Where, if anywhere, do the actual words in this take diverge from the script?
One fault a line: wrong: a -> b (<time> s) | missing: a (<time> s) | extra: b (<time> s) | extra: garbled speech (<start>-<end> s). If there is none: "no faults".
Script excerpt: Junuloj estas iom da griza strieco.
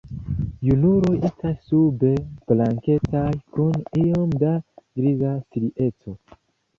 extra: sube blankecaj kun (1.7 s)